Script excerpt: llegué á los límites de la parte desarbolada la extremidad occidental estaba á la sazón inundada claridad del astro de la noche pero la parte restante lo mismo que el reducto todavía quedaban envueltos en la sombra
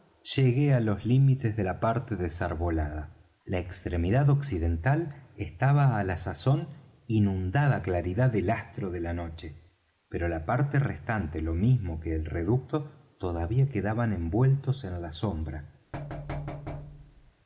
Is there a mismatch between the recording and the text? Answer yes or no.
no